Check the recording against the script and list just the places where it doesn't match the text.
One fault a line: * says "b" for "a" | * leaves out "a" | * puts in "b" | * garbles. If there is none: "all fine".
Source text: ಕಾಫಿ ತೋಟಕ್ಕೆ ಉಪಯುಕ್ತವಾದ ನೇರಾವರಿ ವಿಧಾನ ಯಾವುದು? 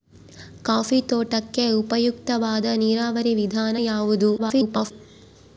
* garbles